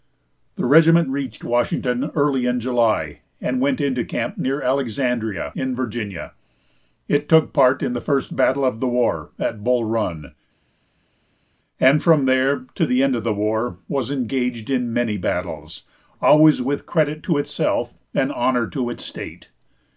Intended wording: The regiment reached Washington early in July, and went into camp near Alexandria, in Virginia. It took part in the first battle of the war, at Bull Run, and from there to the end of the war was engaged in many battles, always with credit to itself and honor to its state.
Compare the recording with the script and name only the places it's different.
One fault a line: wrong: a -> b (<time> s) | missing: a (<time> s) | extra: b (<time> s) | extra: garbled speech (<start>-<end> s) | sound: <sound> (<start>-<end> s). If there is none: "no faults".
no faults